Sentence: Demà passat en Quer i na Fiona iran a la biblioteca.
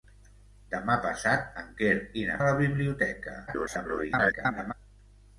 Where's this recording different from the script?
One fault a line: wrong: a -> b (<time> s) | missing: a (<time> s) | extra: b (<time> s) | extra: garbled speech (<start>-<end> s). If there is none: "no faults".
missing: Fiona iran (2.4 s)
extra: garbled speech (3.5-4.7 s)